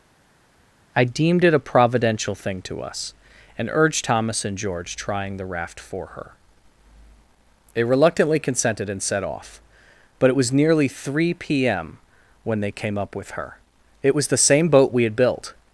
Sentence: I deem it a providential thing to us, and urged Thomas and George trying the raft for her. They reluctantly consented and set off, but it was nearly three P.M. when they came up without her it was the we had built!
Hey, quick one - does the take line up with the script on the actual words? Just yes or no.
no